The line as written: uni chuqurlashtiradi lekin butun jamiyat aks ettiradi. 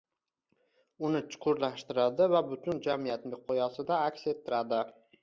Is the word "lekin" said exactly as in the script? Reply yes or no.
no